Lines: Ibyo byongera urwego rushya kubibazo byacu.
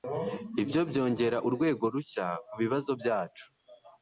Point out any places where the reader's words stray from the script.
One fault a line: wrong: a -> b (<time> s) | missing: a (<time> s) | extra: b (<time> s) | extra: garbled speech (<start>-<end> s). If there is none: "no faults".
no faults